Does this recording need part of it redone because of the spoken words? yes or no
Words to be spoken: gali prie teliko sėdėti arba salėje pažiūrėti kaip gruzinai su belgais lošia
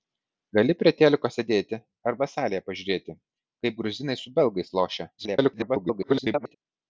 yes